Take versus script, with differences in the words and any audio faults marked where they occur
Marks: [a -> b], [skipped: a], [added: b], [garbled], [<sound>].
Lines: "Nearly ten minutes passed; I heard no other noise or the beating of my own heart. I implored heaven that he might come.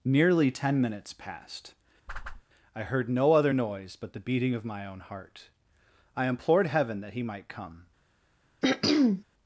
"Nearly ten minutes passed; [whoosh] I heard no other noise [or -> but] the beating of my own heart. I implored heaven that he might come. [throat clearing]